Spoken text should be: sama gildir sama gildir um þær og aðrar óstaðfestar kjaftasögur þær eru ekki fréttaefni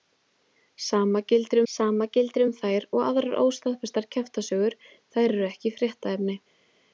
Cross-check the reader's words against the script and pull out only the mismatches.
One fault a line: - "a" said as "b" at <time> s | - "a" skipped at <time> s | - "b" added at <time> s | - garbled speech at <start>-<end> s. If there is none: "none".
none